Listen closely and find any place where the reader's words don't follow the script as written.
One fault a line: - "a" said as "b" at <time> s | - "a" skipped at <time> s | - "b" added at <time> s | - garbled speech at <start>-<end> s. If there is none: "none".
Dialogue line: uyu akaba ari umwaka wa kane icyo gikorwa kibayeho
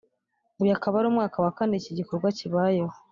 - "icyo" said as "iki" at 1.8 s